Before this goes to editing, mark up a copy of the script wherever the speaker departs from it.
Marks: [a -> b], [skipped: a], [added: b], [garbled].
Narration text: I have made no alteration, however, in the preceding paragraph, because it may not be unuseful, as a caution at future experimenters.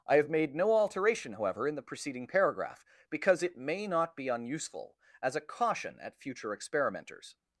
I have made no alteration, however, in the preceding paragraph, because it may not be unuseful, as a caution at future experimenters.